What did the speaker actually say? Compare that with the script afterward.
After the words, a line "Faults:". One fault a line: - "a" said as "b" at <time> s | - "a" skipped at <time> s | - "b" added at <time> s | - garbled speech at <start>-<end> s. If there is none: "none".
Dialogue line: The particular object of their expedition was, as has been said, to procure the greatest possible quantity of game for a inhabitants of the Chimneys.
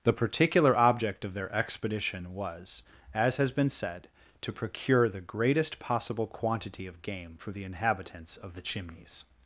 The particular object of their expedition was, as has been said, to procure the greatest possible quantity of game for the inhabitants of the Chimneys.
Faults:
- "a" said as "the" at 7.5 s